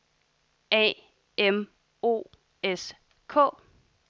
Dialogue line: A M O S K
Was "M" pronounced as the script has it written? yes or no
yes